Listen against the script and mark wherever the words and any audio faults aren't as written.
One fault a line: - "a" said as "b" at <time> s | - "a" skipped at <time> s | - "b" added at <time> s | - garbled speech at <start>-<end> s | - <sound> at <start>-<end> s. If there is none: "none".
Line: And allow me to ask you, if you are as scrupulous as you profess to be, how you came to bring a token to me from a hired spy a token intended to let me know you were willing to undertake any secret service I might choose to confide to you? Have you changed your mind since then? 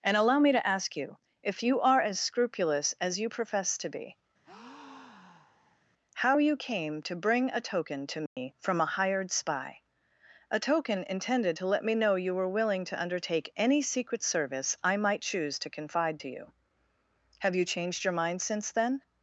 - breath at 4.4-5.8 s
- dropout at 8.3-8.4 s